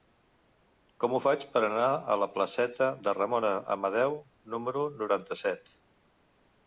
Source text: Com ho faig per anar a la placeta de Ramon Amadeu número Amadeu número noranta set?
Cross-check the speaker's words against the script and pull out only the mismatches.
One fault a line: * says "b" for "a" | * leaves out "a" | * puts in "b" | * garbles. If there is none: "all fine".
* leaves out "Amadeu número"